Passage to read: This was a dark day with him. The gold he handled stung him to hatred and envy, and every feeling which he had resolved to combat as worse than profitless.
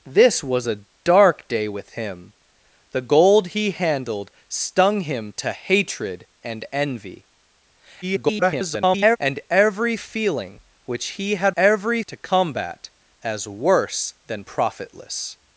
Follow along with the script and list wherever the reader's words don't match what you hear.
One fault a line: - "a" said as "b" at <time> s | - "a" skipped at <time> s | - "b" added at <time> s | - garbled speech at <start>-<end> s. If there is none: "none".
- garbled speech at 8.0-9.2 s
- "resolved" said as "every" at 11.5 s